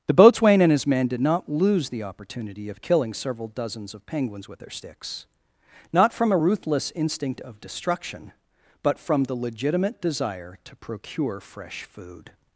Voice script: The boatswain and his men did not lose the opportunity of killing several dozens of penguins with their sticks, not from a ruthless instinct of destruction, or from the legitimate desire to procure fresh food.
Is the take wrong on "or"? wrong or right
wrong